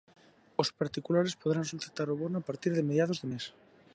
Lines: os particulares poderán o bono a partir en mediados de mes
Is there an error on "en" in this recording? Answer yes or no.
yes